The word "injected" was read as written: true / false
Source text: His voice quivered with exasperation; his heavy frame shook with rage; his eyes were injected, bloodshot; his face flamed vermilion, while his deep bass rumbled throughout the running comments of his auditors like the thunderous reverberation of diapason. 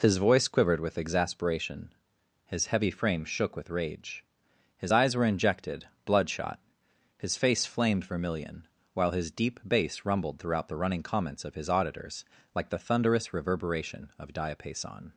true